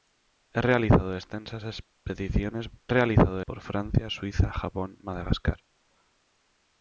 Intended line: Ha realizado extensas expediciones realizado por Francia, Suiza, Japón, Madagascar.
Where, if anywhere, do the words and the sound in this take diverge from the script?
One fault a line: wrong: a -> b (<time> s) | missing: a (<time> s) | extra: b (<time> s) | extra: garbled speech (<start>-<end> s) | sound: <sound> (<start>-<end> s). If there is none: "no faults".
no faults